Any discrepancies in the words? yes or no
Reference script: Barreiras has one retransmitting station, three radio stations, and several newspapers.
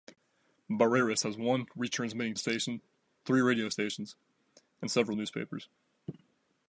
no